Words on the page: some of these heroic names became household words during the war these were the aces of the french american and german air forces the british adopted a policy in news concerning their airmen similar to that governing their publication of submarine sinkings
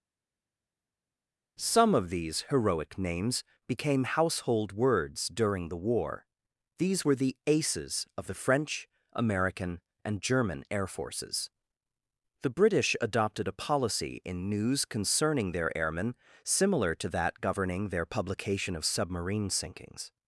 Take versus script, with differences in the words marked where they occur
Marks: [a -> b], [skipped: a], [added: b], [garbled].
some of these heroic names became household words during the war these were the aces of the french american and german air forces the british adopted a policy in news concerning their airmen similar to that governing their publication of submarine sinkings